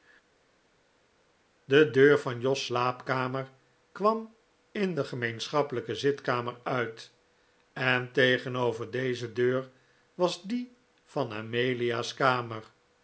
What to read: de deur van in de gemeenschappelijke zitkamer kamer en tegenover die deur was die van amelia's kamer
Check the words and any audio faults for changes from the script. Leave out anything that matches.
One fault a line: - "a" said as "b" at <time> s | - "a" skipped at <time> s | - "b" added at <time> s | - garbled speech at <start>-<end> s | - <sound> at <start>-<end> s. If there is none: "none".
- "jos slaapkamer kwam" added at 2.4 s
- "kamer" said as "uit" at 6.6 s
- "die" said as "deze" at 8.9 s